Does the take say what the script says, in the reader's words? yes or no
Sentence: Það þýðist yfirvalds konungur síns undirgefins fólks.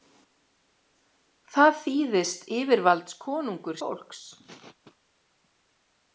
no